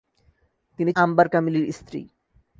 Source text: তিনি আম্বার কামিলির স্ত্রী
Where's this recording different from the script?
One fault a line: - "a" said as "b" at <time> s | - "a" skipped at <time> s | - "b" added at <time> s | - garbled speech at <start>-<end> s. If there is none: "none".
none